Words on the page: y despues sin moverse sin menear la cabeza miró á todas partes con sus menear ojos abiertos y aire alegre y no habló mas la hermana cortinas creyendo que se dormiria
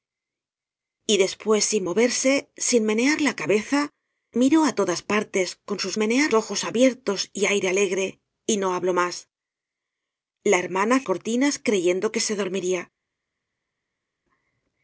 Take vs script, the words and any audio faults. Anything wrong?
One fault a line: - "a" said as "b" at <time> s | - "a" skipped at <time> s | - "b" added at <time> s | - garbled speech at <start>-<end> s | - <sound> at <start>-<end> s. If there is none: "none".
none